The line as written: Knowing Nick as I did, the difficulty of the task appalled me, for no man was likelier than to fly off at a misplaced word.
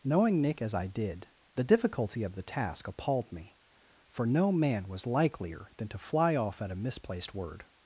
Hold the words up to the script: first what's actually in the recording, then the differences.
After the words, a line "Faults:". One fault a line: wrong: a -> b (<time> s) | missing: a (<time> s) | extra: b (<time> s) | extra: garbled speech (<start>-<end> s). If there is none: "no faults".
Knowing Nick as I did, the difficulty of the task appalled me, for no man was likelier than to fly off at a misplaced word.
Faults:
no faults